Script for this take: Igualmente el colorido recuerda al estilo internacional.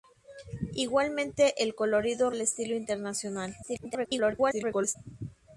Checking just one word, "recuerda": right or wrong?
wrong